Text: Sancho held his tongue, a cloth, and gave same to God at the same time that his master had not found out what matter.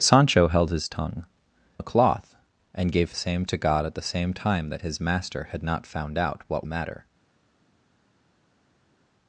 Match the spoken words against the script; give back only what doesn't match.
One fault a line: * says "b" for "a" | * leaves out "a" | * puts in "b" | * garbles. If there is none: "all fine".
all fine